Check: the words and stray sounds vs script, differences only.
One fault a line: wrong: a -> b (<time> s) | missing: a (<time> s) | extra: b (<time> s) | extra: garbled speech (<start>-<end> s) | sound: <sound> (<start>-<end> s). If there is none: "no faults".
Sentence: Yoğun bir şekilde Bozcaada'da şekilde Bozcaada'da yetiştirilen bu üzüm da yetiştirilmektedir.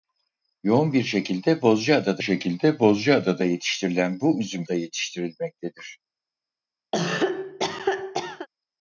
sound: cough (6.9-8.5 s)